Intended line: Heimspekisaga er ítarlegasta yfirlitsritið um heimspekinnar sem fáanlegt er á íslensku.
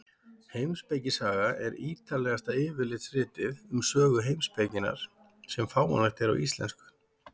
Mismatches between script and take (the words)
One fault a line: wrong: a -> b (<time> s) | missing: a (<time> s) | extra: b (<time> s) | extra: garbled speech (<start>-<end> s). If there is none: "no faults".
extra: sögu (3.9 s)